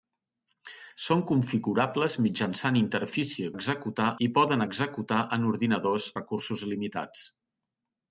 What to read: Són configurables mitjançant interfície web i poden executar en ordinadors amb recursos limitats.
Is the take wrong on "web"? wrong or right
wrong